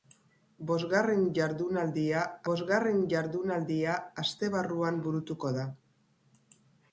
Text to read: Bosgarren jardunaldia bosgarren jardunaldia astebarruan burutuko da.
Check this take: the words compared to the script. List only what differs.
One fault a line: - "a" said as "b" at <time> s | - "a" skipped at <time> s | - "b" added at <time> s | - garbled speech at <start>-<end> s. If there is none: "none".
none